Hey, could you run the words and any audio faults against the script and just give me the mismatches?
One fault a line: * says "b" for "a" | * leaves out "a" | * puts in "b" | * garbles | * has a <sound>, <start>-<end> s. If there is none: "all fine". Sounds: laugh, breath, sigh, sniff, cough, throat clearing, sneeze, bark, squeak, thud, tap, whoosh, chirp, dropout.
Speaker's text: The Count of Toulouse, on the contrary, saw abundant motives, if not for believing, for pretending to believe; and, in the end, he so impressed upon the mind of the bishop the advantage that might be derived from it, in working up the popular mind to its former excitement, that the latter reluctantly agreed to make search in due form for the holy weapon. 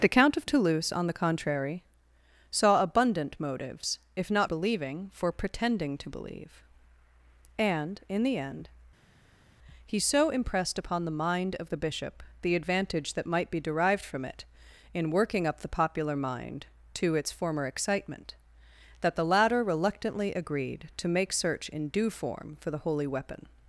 * leaves out "for"